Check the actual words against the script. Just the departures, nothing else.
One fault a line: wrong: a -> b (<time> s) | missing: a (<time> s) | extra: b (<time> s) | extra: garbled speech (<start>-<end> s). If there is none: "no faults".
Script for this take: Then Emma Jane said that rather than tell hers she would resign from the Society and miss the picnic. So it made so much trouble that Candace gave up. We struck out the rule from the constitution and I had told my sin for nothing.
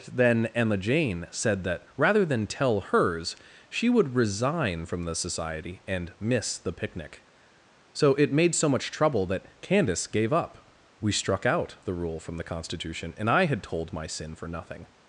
no faults